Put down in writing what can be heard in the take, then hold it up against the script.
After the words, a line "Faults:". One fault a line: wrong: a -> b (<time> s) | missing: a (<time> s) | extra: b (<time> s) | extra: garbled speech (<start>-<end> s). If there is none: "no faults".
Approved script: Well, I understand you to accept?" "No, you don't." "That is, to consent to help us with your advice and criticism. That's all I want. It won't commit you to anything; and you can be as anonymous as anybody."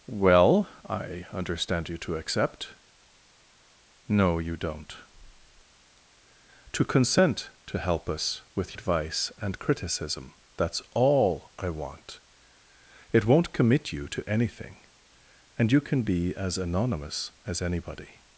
Well, I understand you to accept?" "No, you don't." "To consent to help us with advice and criticism. That's all I want. It won't commit you to anything; and you can be as anonymous as anybody."
Faults:
missing: That is (5.0 s)
missing: your (8.8 s)